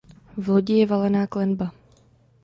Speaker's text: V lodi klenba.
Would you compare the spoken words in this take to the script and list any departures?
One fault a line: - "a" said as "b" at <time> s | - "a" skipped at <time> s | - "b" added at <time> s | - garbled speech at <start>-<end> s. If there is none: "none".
- "je valená" added at 0.7 s